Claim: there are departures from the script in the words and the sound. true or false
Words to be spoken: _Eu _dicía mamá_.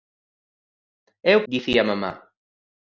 false